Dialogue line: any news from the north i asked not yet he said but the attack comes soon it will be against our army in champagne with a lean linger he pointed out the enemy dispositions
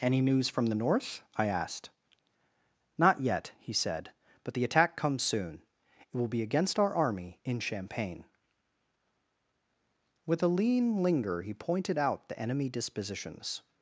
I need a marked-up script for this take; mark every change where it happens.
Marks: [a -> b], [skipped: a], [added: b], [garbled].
any news from the north i asked not yet he said but the attack comes soon it will be against our army in champagne with a lean linger he pointed out the enemy dispositions